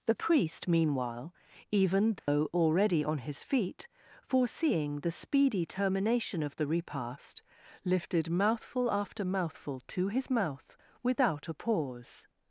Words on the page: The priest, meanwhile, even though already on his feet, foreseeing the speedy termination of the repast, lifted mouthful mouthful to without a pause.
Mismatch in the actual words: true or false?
true